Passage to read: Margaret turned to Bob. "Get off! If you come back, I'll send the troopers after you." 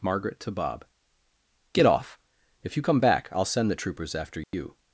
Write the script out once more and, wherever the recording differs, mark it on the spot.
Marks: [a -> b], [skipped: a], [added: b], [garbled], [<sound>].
Margaret [skipped: turned] to Bob. "Get off! If you come back, I'll send the troopers after you." [dropout]